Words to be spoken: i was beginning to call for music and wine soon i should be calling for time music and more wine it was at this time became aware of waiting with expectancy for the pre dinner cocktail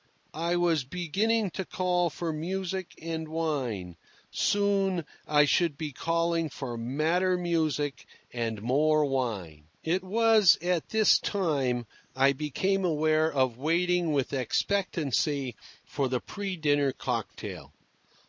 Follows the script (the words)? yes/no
no